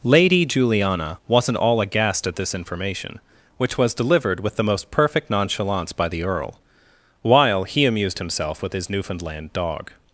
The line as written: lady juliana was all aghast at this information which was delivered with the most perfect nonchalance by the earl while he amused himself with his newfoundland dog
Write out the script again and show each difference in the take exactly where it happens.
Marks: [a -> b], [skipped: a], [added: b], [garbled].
lady juliana [was -> wasn't] all aghast at this information which was delivered with the most perfect nonchalance by the earl while he amused himself with his newfoundland dog